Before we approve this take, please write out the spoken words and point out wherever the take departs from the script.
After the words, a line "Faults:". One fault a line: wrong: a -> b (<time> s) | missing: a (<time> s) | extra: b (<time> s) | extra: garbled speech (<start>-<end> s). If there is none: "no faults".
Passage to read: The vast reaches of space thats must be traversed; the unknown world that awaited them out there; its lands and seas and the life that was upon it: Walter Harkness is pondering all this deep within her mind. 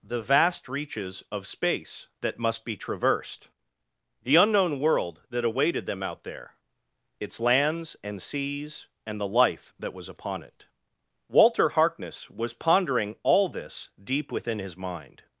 The vast reaches of space that must be traversed; the unknown world that awaited them out there; its lands and seas and the life that was upon it: Walter Harkness was pondering all this deep within his mind.
Faults:
wrong: thats -> that (2.2 s)
wrong: is -> was (12.3 s)
wrong: her -> his (14.6 s)